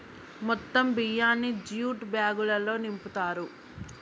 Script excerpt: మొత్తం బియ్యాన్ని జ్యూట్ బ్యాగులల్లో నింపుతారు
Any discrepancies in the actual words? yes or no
no